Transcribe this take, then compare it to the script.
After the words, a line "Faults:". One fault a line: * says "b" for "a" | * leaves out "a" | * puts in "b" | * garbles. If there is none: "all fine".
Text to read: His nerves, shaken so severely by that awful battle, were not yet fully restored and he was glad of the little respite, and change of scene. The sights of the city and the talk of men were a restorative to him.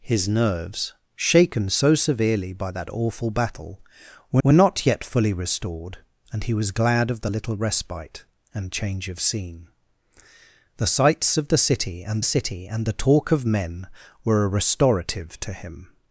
His nerves, shaken so severely by that awful battle, were were not yet fully restored and he was glad of the little respite, and change of scene. The sights of the city and city and the talk of men were a restorative to him.
Faults:
* puts in "were"
* puts in "city and"